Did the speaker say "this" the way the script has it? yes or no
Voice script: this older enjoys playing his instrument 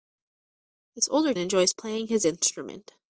yes